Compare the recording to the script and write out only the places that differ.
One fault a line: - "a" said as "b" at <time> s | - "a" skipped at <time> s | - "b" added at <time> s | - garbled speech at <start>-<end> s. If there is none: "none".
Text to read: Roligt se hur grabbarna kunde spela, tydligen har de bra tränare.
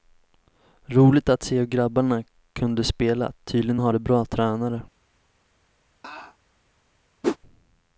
- "att" added at 1.3 s